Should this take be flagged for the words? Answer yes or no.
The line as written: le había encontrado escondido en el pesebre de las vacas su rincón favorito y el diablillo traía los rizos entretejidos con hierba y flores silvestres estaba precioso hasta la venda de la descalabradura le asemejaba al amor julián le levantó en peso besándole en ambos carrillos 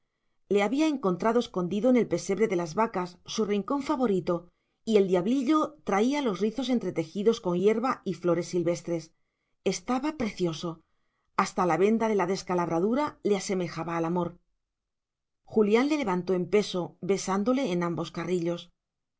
no